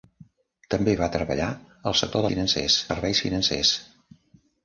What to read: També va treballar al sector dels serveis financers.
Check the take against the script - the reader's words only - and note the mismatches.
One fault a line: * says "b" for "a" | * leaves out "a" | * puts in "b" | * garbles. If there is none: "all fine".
* says "financers" for "dels"